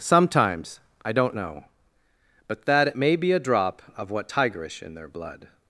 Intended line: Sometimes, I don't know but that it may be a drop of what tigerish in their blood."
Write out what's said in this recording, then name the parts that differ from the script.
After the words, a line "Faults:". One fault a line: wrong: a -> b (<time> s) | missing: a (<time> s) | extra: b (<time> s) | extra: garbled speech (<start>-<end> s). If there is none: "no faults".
Sometimes, I don't know but that it may be a drop of what tigerish in their blood."
Faults:
no faults